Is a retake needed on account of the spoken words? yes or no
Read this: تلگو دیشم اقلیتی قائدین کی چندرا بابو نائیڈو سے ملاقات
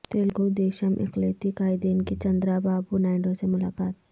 no